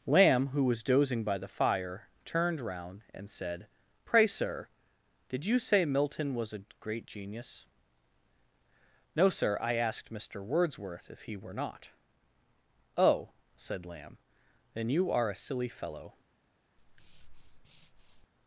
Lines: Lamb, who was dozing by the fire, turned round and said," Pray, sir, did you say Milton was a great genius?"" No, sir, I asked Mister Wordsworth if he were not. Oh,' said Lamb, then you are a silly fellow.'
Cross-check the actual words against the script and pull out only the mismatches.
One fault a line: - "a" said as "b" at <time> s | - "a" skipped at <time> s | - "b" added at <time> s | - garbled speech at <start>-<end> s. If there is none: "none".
none